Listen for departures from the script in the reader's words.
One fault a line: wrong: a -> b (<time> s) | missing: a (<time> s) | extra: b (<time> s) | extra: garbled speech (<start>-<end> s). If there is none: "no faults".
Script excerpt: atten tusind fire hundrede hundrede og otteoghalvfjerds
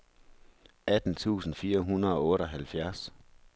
missing: hundrede (2.1 s)